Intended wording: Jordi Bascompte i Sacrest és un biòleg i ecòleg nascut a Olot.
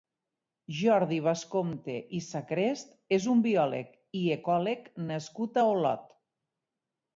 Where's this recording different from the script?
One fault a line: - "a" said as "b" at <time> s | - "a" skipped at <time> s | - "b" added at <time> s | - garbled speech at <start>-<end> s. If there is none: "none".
none